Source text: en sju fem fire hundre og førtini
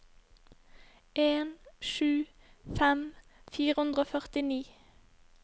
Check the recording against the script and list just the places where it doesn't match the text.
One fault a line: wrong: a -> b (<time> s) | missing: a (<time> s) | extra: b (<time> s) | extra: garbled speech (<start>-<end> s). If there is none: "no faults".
no faults